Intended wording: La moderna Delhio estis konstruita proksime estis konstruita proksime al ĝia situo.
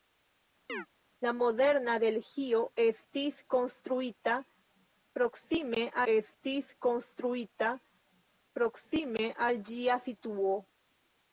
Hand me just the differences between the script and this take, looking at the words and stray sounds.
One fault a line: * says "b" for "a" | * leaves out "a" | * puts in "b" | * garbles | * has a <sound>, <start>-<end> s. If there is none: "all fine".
* has a chirp, 0.7-0.9 s